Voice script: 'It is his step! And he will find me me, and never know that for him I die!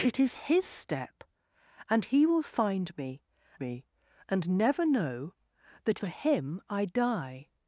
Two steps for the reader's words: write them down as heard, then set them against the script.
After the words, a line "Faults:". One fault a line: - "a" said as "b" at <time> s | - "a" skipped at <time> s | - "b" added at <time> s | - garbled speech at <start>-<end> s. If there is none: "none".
'It is his step! And he will find me me, and never know that for him I die!
Faults:
none